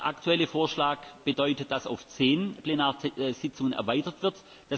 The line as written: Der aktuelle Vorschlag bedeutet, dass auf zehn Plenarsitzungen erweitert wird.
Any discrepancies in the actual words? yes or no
no